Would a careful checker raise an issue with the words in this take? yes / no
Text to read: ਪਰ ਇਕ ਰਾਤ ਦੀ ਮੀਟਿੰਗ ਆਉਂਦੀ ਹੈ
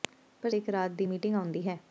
no